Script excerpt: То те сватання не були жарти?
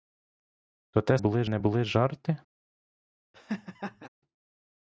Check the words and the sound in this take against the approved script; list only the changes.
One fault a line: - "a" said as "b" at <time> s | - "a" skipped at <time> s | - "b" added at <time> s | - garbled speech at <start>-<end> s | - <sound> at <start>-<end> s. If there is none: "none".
- "сватання" said as "були" at 1.2 s
- laugh at 3.3-4.1 s